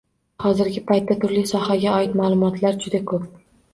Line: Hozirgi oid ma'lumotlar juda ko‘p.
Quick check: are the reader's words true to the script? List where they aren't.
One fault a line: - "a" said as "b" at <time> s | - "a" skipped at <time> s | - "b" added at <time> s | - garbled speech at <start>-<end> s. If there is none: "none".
- "paytda turli sohaga" added at 0.9 s